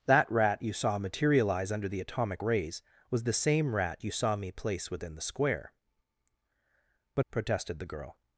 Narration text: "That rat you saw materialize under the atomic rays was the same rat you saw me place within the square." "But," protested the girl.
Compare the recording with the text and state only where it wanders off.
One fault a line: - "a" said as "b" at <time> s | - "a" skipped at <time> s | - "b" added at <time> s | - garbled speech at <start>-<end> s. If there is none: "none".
none